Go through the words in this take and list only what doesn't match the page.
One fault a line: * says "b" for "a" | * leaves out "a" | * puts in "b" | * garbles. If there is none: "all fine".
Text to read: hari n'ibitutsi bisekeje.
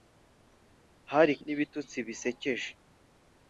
all fine